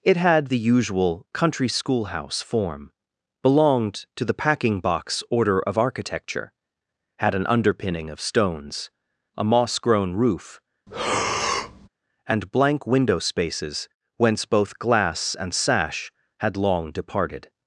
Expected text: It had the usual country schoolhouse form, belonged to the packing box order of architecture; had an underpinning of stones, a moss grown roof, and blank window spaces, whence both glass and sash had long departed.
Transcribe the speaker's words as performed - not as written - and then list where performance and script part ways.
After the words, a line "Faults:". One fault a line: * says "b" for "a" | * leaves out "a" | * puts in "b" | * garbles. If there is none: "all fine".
It had the usual country schoolhouse form, belonged to the packing box order of architecture; had an underpinning of stones, a moss grown roof, and blank window spaces, whence both glass and sash had long departed.
Faults:
all fine